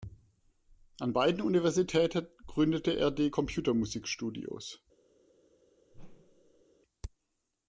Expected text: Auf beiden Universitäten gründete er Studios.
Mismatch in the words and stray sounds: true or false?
true